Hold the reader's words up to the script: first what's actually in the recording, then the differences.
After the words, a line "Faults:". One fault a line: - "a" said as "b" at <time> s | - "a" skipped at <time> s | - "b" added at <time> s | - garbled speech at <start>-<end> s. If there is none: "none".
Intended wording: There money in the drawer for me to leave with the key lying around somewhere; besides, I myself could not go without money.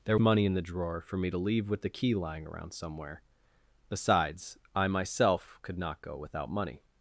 There money in the drawer for me to leave with the key lying around somewhere; besides, I myself could not go without money.
Faults:
none